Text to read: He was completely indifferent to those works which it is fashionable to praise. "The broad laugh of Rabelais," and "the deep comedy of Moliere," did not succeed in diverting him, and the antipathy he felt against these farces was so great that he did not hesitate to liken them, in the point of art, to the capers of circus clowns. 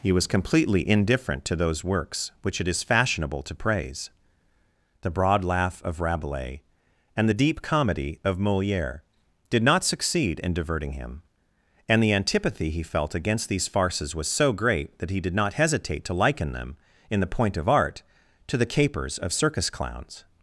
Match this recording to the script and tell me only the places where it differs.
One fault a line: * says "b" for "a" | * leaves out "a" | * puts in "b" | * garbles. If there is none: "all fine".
all fine